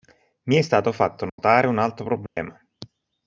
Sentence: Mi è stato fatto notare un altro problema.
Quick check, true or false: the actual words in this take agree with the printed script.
true